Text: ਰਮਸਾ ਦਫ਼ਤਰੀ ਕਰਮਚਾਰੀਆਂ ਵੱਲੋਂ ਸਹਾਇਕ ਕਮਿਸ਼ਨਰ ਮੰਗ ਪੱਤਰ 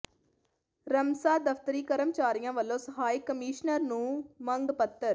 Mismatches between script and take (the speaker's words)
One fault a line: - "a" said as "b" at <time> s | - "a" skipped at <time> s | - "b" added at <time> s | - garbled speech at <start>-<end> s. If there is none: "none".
- "ਨੂੰ" added at 3.8 s